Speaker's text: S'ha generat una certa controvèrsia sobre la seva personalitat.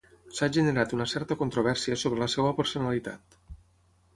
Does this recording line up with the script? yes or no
yes